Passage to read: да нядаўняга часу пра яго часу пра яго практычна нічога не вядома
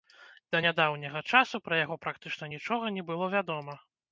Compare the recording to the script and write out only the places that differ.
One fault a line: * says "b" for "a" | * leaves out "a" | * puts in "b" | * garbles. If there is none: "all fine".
* leaves out "часу пра яго"
* puts in "было"